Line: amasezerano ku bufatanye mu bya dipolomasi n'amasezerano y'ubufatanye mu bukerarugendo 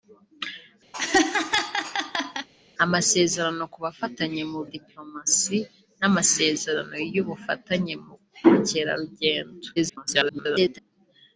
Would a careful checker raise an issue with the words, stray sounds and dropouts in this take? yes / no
yes